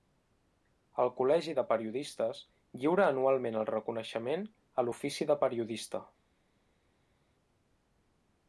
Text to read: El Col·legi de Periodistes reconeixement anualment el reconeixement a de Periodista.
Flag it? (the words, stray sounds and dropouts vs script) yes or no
yes